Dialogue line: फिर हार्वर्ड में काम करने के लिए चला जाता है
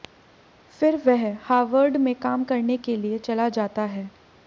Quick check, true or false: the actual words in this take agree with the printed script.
false